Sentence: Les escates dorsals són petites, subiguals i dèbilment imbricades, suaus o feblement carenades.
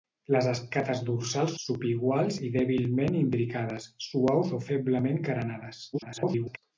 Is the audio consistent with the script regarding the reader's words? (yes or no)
no